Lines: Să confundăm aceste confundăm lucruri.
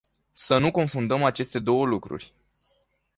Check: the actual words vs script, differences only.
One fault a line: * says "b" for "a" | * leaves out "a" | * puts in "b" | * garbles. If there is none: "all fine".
* puts in "nu"
* says "două" for "confundăm"